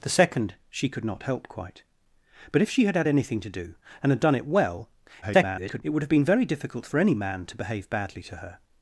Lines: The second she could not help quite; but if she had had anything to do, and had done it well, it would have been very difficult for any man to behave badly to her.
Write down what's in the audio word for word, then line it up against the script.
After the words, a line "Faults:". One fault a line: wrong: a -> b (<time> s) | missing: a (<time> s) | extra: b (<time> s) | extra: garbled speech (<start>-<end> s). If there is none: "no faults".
The second she could not help quite; but if she had had anything to do, and had done it well, [garbled] it would have been very difficult for any man to behave badly to her.
Faults:
extra: garbled speech (5.2-5.8 s)